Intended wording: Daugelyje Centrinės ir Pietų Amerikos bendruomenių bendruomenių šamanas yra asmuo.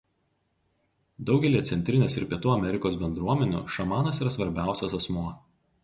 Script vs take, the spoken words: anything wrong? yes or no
yes